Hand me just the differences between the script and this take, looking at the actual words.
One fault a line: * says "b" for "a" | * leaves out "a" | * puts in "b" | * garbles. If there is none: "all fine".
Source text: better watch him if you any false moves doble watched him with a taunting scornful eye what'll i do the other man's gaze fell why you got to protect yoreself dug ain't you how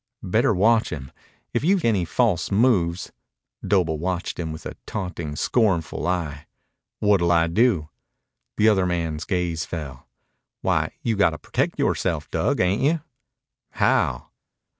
all fine